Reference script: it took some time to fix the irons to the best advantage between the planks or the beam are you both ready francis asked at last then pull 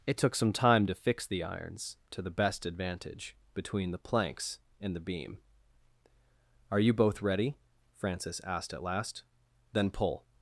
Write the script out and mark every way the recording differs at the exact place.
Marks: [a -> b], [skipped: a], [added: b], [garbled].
it took some time to fix the irons to the best advantage between the planks [or -> and] the beam are you both ready francis asked at last then pull